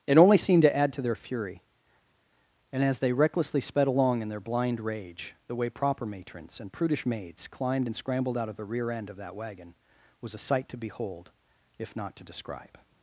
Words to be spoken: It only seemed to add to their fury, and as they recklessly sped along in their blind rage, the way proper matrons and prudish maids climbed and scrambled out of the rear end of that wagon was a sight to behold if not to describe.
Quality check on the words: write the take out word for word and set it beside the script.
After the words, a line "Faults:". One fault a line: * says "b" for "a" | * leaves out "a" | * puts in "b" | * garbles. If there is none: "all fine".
It only seemed to add to their fury, and as they recklessly sped along in their blind rage, the way proper matrons and prudish maids climbed and scrambled out of the rear end of that wagon was a sight to behold if not to describe.
Faults:
all fine